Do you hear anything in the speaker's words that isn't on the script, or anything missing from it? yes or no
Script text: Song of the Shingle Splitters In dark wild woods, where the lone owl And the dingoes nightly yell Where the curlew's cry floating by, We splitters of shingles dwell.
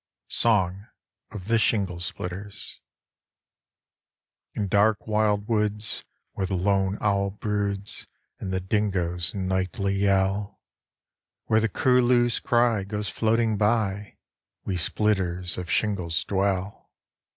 yes